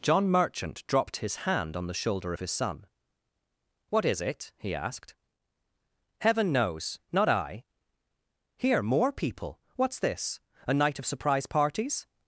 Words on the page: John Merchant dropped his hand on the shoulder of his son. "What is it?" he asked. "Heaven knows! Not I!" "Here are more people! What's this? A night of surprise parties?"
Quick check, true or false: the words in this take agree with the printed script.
false